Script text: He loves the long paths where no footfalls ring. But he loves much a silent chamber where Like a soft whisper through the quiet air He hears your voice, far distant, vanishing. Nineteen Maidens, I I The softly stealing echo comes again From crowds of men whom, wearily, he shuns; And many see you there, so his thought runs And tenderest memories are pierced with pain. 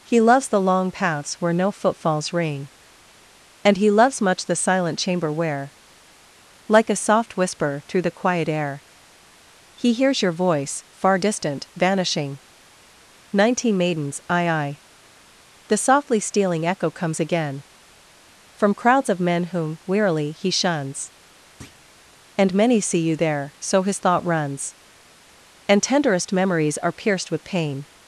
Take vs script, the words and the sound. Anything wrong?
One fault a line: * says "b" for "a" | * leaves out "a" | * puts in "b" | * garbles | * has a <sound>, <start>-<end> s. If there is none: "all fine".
* says "And" for "But"
* says "the" for "a"
* has a thud, 21.6-21.8 s